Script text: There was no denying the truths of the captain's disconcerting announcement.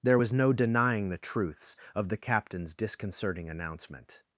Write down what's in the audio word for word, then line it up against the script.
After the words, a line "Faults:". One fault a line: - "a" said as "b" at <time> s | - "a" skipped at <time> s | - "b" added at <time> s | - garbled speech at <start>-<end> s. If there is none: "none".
There was no denying the truths of the captain's disconcerting announcement.
Faults:
none